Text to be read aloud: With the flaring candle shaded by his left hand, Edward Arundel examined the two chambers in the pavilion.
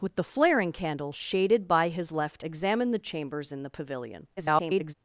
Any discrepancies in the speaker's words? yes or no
yes